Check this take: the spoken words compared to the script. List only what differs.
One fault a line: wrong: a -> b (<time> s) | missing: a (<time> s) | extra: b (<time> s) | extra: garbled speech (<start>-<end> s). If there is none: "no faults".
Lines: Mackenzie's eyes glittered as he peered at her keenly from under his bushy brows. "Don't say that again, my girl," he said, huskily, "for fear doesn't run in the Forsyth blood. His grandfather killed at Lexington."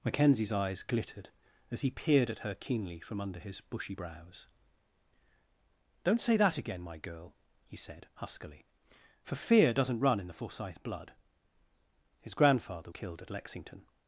no faults